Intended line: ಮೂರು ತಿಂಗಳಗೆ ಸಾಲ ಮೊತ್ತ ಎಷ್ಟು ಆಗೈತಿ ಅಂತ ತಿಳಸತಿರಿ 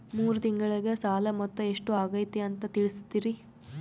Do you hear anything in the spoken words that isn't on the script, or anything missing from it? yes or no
no